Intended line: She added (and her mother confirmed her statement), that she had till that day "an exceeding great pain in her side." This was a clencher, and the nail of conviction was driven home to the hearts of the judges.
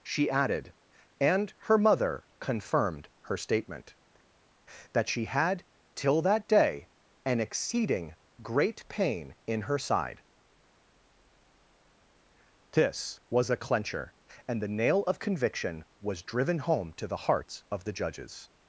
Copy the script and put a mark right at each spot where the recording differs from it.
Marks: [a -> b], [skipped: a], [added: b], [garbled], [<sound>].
She added (and her mother confirmed her statement), that she had till that day "an exceeding great pain in her side." This was a clencher, and the nail of conviction was driven home to the hearts of the judges.